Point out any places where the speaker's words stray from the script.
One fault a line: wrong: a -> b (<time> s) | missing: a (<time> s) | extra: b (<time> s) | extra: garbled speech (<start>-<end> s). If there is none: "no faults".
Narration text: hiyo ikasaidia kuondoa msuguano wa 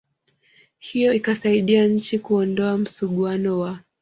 extra: nchi (1.9 s)